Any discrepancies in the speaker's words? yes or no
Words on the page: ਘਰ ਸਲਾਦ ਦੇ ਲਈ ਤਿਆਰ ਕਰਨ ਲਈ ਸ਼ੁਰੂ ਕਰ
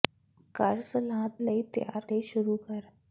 yes